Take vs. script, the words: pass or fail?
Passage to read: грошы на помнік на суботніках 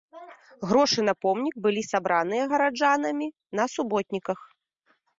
fail